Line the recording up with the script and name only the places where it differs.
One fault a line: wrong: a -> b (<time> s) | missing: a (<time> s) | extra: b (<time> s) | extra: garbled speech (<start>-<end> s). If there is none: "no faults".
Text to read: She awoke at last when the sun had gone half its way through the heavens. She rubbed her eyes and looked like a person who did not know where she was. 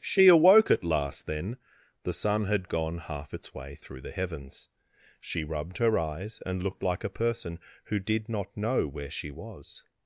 wrong: when -> then (1.3 s)